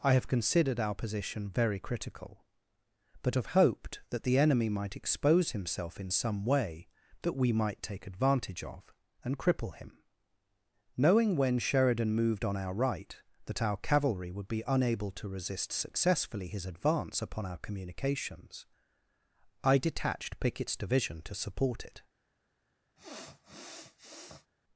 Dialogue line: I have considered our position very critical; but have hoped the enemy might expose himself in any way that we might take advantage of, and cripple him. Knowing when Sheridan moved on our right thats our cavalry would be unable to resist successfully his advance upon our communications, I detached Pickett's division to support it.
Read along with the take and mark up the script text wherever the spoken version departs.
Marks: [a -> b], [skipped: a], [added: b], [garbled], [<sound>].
I have considered our position very critical; but have hoped [added: that] the enemy might expose himself in [any -> some] way that we might take advantage of, and cripple him. Knowing when Sheridan moved on our right [thats -> that] our cavalry would be unable to resist successfully his advance upon our communications, I detached Pickett's division to support it. [sniff]